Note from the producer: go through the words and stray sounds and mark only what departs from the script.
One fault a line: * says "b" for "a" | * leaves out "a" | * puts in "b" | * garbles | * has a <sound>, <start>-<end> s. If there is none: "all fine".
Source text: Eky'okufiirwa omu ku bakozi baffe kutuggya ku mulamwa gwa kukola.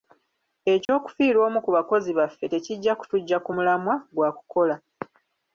* has a dropout, 0.9-0.9 s
* puts in "tekijja"